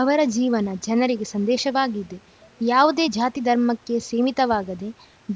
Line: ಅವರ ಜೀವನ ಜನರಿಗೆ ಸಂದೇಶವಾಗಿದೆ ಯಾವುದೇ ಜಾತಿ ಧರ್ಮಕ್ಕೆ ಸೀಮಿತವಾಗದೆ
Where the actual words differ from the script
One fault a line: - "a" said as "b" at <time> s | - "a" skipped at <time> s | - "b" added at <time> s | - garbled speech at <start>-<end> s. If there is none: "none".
none